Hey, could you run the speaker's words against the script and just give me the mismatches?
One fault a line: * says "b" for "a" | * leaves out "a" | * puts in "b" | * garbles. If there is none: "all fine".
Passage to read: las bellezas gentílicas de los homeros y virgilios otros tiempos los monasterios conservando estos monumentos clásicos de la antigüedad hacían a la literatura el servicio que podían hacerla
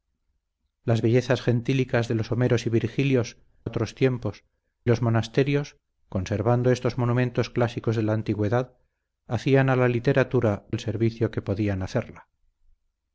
all fine